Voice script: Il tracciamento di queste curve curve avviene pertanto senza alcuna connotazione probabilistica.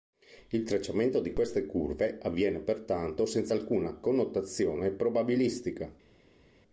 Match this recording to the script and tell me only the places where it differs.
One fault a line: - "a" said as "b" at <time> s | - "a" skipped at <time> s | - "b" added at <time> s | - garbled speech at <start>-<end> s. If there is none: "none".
- "curve" skipped at 2.2 s